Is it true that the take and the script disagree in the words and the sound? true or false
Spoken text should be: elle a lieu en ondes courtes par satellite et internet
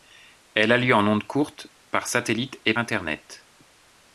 false